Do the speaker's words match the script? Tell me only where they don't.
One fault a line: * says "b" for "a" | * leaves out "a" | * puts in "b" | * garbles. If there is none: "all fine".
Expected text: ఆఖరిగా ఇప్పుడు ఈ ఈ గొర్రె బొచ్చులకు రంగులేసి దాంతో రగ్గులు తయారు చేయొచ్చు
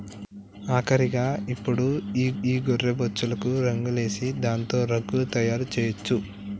all fine